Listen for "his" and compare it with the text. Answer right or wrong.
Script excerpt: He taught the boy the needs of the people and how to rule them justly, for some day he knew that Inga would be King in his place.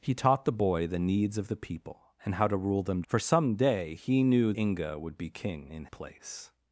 wrong